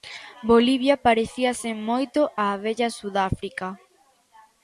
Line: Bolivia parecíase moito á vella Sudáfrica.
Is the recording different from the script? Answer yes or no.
no